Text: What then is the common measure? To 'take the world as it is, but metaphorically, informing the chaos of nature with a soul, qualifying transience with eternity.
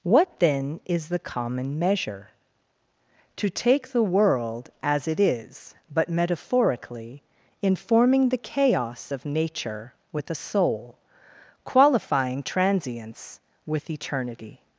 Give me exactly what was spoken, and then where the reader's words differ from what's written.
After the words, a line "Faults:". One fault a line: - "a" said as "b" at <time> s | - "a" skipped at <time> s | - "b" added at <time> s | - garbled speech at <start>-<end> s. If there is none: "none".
What then is the common measure? To 'take the world as it is, but metaphorically, informing the chaos of nature with a soul, qualifying transience with eternity.
Faults:
none